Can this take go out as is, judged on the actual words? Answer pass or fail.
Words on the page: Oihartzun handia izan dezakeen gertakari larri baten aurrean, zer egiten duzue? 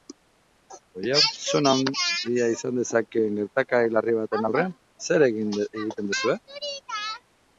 pass